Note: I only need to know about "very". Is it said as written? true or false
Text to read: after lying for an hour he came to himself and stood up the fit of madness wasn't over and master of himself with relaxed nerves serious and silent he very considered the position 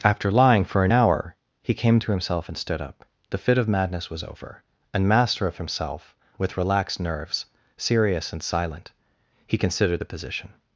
false